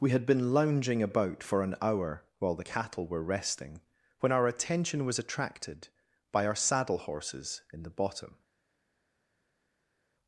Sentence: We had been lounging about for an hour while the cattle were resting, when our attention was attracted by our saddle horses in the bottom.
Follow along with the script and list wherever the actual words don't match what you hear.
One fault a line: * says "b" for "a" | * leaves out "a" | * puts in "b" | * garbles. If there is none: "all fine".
all fine